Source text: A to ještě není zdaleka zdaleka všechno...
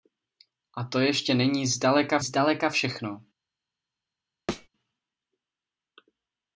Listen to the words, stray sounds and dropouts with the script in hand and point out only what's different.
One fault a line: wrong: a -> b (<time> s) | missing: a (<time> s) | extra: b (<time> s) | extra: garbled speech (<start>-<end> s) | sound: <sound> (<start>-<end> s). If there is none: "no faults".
sound: thud (4.5-4.7 s)